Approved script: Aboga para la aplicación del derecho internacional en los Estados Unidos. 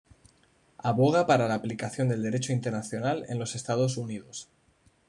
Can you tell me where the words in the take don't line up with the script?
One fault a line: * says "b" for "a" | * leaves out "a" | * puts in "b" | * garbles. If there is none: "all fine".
all fine